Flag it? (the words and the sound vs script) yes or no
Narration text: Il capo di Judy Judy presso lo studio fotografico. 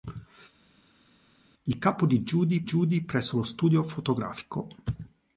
no